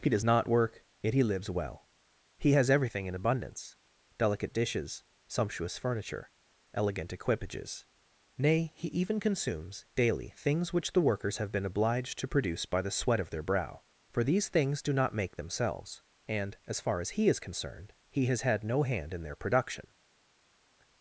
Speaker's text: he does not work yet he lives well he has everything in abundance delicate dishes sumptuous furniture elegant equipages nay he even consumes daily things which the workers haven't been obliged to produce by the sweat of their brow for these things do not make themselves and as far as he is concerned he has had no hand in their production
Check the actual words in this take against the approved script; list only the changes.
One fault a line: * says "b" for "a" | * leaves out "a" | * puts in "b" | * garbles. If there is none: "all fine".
* says "have" for "haven't"